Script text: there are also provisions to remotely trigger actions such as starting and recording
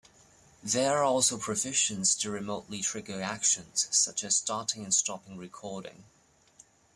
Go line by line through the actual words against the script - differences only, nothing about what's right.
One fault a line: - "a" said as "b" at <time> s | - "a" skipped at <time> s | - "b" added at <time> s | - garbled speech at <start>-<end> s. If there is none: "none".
- "stopping" added at 4.9 s